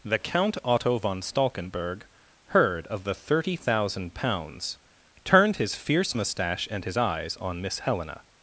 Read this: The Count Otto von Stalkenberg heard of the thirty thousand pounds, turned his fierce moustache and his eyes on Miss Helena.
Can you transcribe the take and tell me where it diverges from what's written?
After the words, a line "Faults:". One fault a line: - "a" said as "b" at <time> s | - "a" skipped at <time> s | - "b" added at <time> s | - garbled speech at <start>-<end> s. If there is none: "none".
The Count Otto von Stalkenberg heard of the thirty thousand pounds, turned his fierce moustache and his eyes on Miss Helena.
Faults:
none